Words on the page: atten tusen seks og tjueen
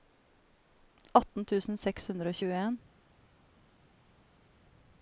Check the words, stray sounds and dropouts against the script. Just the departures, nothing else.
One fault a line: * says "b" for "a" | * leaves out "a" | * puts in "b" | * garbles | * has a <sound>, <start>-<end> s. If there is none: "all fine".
* puts in "hundre"